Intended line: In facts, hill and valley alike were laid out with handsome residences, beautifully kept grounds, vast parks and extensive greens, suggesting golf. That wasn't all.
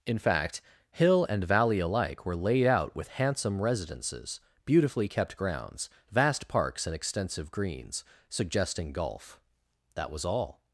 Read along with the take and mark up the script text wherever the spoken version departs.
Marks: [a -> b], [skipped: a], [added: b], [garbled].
In [facts, -> fact] hill and valley alike were laid out with handsome residences, beautifully kept grounds, vast parks and extensive greens, suggesting golf. That [wasn't -> was] all.